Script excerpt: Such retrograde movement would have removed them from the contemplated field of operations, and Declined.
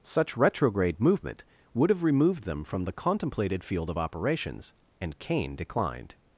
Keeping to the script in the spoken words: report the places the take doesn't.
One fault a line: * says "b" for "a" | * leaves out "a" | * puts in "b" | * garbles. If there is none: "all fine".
* puts in "Kane"